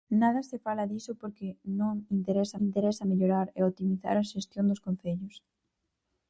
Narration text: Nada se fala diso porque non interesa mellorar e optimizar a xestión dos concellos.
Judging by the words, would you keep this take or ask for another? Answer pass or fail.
fail